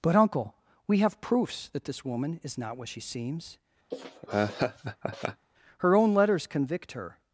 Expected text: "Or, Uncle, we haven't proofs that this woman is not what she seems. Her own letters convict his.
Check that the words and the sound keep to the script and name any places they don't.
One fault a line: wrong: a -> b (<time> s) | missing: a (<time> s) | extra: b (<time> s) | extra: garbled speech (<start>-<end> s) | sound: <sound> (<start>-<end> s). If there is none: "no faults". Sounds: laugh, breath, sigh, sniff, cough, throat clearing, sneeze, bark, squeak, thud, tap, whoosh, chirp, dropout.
wrong: Or -> But (0.0 s)
wrong: haven't -> have (1.0 s)
sound: laugh (3.9-5.5 s)
wrong: his -> her (6.9 s)